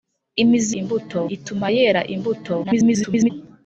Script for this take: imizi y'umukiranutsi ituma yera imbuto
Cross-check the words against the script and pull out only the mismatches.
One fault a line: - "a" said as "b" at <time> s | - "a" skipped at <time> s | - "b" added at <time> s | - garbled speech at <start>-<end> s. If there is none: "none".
- "y'umukiranutsi" said as "imbuto" at 0.8 s
- garbled speech at 2.6-3.3 s